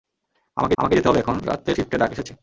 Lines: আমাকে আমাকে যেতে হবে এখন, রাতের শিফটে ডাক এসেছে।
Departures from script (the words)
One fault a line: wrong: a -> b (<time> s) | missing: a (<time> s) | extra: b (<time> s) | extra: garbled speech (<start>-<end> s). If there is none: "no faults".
no faults